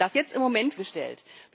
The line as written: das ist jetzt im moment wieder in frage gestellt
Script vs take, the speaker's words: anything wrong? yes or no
yes